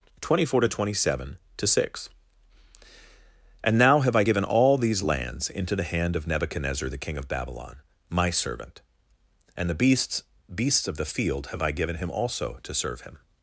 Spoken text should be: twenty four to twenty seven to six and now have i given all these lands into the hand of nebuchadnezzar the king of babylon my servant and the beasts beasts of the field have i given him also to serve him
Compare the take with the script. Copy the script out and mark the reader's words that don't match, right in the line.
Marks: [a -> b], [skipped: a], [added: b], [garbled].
twenty four to twenty seven to six and now have i given all these lands into the hand of nebuchadnezzar the king of babylon my servant and the beasts beasts of the field have i given him also to serve him